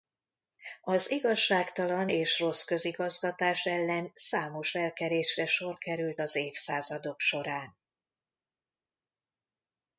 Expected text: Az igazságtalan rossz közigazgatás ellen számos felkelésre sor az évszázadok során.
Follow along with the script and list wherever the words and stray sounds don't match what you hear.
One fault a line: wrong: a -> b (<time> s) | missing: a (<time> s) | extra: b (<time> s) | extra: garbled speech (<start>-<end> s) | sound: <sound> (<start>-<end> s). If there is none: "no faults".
extra: és (2.1 s)
extra: került (5.8 s)